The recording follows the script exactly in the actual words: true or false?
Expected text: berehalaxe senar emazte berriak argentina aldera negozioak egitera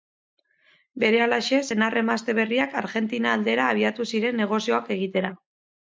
false